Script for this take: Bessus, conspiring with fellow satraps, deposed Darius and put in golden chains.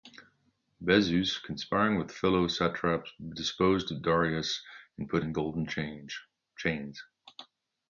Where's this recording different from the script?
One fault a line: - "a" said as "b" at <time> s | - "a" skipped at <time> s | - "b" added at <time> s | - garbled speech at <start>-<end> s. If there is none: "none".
none